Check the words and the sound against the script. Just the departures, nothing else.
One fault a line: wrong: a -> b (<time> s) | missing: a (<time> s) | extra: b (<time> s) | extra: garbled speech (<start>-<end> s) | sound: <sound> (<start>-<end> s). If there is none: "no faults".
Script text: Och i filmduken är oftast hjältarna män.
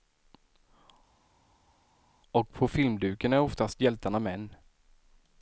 wrong: i -> på (2.5 s)